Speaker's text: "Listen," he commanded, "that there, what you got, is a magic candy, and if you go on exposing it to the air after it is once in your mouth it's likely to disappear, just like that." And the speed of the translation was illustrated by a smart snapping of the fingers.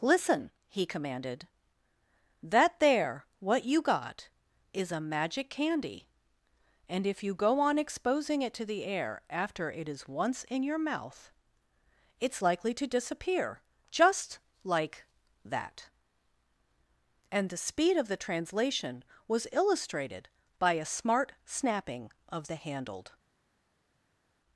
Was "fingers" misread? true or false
true